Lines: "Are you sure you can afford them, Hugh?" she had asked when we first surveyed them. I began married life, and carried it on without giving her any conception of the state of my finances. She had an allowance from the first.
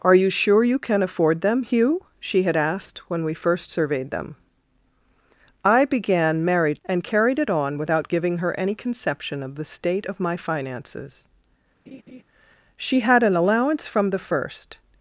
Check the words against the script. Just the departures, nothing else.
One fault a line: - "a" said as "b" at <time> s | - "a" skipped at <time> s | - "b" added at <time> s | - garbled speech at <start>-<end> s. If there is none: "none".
- "life" skipped at 6.8 s